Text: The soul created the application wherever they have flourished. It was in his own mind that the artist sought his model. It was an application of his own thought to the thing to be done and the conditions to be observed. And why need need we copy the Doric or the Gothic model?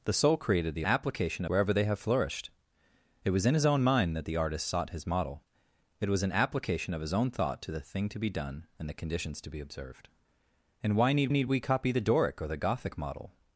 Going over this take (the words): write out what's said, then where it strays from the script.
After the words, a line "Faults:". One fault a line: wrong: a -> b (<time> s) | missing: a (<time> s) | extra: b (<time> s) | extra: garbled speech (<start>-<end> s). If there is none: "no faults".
The soul created the application wherever they have flourished. It was in his own mind that the artist sought his model. It was an application of his own thought to the thing to be done and the conditions to be observed. And why need need we copy the Doric or the Gothic model?
Faults:
no faults